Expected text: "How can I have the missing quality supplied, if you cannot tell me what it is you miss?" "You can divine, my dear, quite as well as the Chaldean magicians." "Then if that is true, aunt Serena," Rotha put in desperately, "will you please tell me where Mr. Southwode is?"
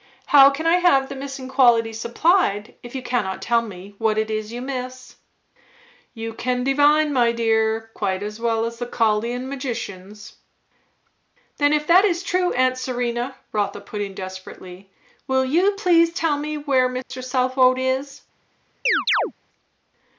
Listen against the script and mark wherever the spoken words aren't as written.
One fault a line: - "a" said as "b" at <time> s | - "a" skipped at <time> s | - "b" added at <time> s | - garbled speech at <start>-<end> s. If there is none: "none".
none